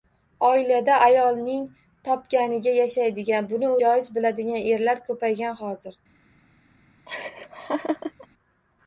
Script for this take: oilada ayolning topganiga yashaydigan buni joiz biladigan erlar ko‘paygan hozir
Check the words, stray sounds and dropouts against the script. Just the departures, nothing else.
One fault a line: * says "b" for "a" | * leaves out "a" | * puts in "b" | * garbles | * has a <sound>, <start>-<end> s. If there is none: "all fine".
* has a laugh, 7.1-8.3 s